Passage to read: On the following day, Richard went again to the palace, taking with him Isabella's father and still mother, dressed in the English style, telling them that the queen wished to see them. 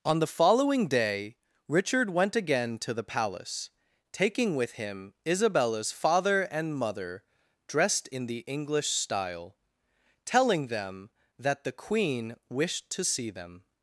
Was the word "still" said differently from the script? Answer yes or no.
yes